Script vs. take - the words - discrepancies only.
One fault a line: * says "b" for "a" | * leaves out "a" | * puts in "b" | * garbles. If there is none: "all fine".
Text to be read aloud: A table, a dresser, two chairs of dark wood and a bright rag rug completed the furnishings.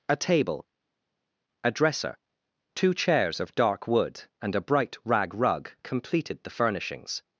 all fine